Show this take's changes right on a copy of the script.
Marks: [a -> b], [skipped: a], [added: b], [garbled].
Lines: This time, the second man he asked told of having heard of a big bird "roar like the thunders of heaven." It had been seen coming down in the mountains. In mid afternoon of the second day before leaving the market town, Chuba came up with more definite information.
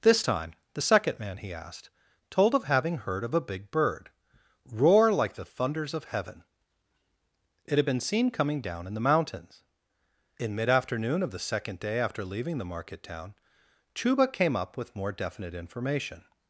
This time, the second man he asked told of having heard of a big bird "roar like the thunders of heaven." It had been seen coming down in the mountains. In mid afternoon of the second day [before -> after] leaving the market town, Chuba came up with more definite information.